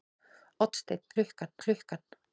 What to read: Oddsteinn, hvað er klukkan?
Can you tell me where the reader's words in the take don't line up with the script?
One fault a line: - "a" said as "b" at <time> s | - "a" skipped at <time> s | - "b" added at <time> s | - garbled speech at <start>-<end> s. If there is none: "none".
- "hvað" said as "klukkan" at 1.2 s